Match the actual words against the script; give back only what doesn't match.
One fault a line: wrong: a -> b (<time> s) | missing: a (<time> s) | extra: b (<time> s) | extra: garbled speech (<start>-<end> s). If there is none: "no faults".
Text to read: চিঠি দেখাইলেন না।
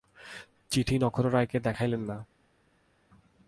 extra: নক্ষত্ররায়কে (1.0 s)